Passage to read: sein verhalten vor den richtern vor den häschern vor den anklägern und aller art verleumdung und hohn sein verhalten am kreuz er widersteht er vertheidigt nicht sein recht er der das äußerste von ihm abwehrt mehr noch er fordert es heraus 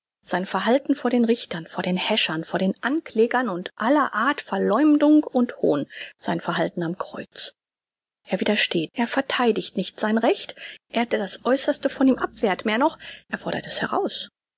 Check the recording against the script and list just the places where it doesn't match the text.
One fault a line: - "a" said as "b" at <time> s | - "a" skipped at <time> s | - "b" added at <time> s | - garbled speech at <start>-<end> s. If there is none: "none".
none